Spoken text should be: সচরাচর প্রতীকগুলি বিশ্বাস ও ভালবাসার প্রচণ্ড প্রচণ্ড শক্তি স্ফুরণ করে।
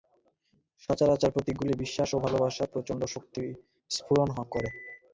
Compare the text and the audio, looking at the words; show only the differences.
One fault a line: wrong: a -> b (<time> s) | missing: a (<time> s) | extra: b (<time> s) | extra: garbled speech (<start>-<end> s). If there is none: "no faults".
missing: প্রচণ্ড (3.0 s)